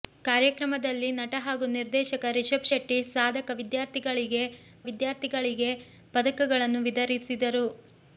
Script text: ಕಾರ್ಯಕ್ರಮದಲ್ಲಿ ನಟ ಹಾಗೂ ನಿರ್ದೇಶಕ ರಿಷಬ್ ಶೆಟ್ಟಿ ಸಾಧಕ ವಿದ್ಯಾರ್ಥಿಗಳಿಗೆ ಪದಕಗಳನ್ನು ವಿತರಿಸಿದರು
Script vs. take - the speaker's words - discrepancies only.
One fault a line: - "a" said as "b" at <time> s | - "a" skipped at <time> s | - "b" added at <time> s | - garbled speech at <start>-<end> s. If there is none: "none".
- "ವಿದ್ಯಾರ್ಥಿಗಳಿಗೆ" added at 4.8 s